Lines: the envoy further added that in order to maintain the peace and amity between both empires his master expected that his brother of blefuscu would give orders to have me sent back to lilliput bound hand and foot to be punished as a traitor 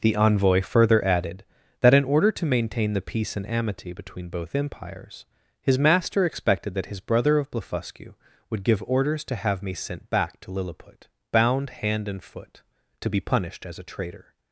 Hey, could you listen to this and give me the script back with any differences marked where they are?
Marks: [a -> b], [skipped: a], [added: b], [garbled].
the envoy further added that in order to maintain the peace and amity between both empires his master expected that his brother of blefuscu would give orders to have me sent back to lilliput bound hand and foot to be punished as a traitor